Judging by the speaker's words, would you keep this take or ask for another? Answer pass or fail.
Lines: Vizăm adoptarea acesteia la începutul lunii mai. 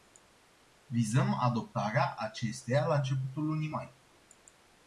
pass